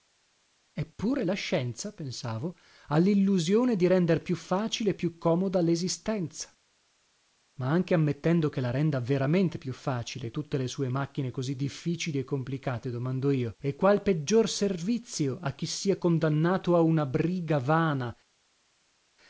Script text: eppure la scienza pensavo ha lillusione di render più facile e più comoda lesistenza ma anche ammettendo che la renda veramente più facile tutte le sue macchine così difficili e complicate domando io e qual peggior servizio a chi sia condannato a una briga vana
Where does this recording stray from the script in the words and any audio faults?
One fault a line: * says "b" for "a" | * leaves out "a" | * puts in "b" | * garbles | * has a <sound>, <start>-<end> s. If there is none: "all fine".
all fine